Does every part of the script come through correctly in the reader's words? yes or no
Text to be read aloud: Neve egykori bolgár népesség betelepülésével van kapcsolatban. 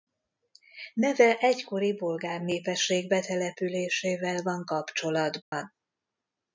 yes